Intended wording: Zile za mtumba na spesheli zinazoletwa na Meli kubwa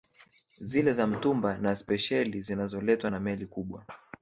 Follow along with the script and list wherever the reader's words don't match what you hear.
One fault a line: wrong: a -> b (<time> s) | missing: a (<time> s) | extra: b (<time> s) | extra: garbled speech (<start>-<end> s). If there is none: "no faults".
no faults